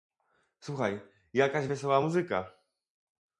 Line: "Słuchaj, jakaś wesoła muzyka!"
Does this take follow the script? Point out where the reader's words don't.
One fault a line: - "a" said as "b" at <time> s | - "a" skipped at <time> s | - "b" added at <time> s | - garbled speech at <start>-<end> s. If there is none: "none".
none